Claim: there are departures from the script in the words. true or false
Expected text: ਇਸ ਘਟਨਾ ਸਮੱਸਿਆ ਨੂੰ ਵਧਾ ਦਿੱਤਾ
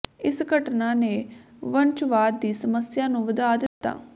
true